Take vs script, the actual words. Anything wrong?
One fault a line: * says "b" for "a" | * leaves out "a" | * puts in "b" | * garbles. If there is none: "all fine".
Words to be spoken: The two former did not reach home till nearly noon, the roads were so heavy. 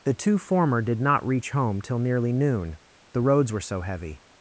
all fine